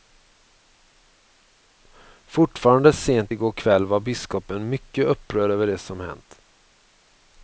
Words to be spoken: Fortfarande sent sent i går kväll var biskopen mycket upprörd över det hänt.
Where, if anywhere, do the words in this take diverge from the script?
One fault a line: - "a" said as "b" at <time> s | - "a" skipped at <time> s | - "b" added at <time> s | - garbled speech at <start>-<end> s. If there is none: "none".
- "sent" skipped at 3.4 s
- "som" added at 5.8 s